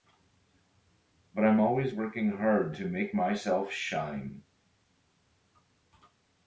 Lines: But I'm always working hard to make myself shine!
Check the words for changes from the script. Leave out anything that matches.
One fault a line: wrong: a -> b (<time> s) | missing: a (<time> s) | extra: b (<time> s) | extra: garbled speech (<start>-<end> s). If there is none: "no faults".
no faults